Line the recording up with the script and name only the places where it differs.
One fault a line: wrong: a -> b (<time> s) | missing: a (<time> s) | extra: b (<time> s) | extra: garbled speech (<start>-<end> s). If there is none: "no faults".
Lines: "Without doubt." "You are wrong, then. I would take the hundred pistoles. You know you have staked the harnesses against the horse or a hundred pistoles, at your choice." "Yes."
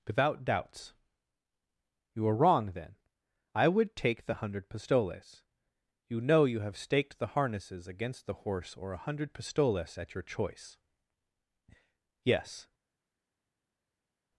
wrong: doubt -> doubts (0.4 s)